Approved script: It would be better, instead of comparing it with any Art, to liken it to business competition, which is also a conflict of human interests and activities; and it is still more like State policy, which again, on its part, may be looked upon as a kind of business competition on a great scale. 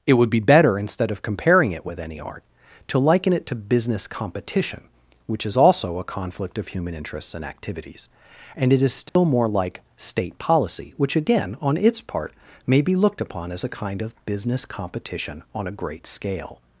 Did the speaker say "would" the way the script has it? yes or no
yes